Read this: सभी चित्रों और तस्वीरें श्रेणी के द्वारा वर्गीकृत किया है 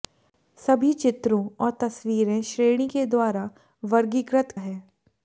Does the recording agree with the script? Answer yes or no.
no